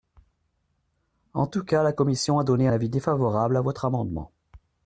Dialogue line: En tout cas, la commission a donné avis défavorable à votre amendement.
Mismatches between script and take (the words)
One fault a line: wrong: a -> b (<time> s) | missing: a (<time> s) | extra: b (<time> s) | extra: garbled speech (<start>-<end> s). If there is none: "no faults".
no faults